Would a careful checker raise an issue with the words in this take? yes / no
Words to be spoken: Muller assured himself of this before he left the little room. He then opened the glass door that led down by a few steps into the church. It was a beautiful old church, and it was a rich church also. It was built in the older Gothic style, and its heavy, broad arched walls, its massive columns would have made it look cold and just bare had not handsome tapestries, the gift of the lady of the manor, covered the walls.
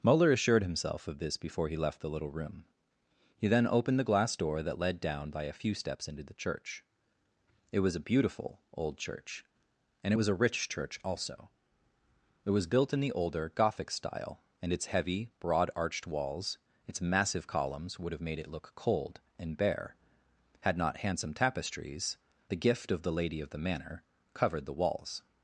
yes